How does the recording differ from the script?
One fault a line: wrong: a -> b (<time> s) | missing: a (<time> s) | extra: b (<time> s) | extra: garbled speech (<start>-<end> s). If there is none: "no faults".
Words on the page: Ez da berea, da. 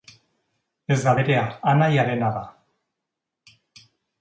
extra: anaiarena (1.7 s)